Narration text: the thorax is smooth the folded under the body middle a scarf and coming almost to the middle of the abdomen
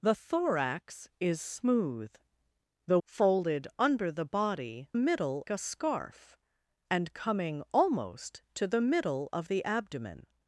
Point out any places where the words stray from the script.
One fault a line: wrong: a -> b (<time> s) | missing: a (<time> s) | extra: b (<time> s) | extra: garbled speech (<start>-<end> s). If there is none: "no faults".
no faults